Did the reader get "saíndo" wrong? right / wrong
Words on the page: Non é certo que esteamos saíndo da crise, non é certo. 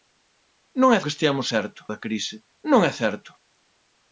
wrong